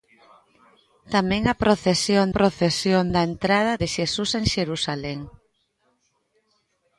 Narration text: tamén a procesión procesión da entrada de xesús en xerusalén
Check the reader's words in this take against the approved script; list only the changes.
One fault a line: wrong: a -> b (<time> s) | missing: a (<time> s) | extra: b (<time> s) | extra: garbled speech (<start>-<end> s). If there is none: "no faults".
no faults